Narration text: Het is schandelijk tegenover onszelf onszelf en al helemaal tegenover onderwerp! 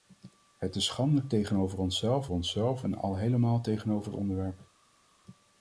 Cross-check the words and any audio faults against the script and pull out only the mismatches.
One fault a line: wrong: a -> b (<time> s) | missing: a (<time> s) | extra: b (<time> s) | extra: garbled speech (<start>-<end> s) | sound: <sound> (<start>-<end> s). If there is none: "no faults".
no faults